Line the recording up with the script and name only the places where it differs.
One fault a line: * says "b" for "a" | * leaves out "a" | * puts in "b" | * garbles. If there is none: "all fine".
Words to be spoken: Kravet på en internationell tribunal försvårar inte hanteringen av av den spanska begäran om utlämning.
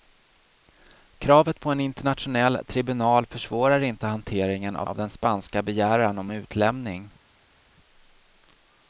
all fine